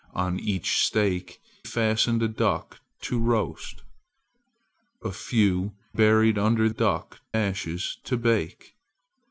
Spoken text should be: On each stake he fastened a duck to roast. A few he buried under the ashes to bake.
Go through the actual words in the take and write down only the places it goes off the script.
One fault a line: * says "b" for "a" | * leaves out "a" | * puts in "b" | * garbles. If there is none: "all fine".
* leaves out "he"
* leaves out "he"
* says "duck" for "the"